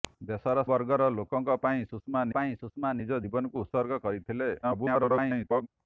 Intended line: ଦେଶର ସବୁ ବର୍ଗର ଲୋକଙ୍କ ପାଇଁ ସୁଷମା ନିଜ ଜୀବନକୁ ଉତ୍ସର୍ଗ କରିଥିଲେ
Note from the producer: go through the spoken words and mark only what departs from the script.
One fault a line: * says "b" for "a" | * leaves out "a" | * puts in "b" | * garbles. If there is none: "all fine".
* leaves out "ସବୁ"
* puts in "ପାଇଁ ସୁଷମା"
* garbles